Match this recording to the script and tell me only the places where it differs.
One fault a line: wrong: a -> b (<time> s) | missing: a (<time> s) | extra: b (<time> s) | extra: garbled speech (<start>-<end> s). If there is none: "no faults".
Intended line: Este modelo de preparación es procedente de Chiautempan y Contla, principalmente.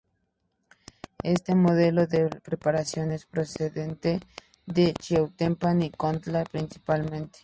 no faults